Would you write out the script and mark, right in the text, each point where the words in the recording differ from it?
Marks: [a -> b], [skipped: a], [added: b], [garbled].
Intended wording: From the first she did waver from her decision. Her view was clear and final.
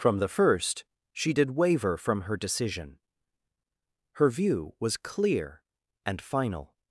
From the first she did waver from her decision. Her view was clear and final.